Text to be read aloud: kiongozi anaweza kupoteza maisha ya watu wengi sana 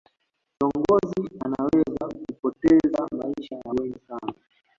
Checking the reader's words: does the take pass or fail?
fail